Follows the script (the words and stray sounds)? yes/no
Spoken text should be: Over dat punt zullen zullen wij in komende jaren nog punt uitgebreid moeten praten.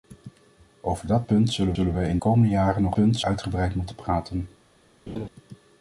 no